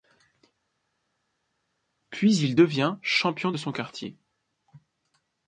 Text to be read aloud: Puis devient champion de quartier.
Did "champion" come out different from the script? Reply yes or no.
no